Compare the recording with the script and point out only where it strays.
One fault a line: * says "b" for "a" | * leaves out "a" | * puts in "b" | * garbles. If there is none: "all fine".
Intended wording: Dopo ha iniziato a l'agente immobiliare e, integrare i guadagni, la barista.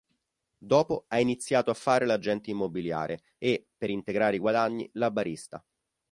* puts in "fare"
* puts in "per"